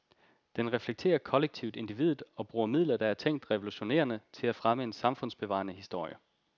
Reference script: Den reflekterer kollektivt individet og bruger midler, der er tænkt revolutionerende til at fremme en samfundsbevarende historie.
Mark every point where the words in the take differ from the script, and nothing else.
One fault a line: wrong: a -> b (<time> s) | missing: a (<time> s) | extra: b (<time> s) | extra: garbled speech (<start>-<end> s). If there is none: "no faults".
no faults